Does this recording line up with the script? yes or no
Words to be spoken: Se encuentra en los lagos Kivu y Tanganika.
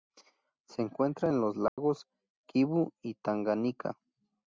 yes